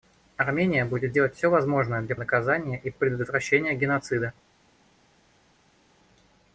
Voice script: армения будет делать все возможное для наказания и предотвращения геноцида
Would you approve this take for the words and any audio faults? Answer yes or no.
yes